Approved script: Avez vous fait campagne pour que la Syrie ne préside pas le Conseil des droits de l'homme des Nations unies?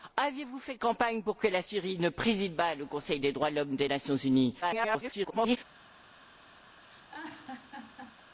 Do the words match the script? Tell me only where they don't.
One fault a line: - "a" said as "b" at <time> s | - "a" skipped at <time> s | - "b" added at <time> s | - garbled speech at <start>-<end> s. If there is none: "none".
- garbled speech at 4.6-5.6 s